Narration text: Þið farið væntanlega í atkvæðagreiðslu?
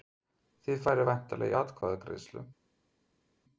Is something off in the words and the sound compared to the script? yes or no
no